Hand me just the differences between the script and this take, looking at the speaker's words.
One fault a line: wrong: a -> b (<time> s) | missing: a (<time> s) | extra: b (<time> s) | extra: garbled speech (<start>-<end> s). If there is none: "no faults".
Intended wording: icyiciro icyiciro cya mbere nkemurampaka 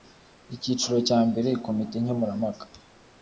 missing: icyiciro (1.0 s)
extra: komite (1.6 s)